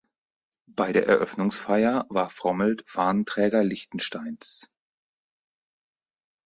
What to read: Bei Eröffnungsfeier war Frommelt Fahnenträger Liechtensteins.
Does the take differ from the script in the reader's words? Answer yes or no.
yes